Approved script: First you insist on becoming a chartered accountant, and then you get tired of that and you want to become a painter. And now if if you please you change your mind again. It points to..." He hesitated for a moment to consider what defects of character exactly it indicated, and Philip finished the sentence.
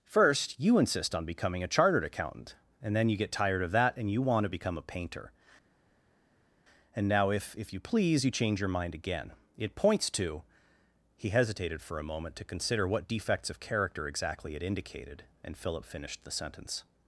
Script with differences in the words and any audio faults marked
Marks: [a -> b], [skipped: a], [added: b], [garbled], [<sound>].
First you insist on becoming a chartered accountant, and then you get tired of that and you want to become a painter. And now if if you please you change your mind again. It points to..." He hesitated for a moment to consider what defects of character exactly it indicated, and Philip finished the sentence.